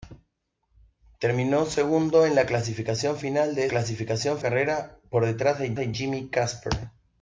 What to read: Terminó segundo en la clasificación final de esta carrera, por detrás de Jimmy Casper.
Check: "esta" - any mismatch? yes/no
yes